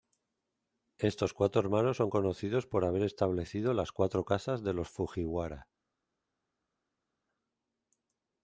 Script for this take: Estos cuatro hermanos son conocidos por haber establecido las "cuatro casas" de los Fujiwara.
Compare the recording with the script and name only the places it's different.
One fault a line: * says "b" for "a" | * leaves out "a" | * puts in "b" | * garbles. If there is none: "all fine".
all fine